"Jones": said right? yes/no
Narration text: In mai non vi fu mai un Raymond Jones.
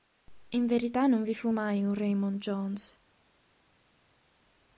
yes